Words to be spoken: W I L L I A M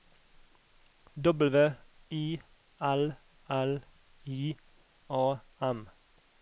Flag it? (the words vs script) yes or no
no